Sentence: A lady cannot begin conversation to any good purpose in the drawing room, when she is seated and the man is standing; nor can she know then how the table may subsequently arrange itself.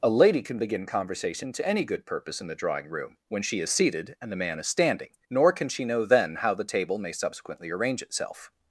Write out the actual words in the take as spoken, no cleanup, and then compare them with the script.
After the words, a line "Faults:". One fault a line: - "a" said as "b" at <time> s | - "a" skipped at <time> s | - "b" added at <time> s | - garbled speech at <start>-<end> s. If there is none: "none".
A lady can begin conversation to any good purpose in the drawing room, when she is seated and the man is standing; nor can she know then how the table may subsequently arrange itself.
Faults:
- "cannot" said as "can" at 0.4 s